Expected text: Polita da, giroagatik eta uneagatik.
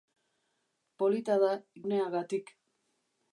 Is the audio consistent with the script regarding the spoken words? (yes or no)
no